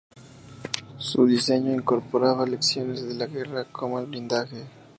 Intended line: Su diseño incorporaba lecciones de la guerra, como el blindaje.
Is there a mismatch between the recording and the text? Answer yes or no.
no